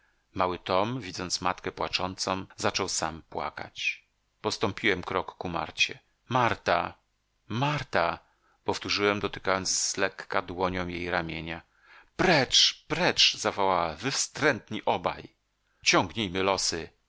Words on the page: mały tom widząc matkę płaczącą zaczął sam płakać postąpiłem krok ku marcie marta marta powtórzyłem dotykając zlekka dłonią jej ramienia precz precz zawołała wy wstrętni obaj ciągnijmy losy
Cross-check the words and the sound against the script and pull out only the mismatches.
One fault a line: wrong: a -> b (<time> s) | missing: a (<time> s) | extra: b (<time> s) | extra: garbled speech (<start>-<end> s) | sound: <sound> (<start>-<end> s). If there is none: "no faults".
no faults